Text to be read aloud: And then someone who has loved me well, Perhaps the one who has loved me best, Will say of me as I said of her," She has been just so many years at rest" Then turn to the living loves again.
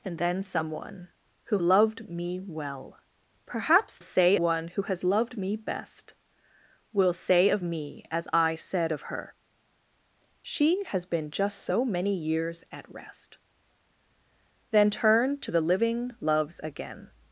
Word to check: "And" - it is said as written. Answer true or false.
true